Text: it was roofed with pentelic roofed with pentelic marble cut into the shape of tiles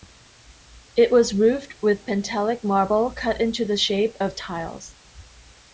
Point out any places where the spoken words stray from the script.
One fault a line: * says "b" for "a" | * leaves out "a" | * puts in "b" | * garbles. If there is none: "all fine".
* leaves out "roofed with pentelic"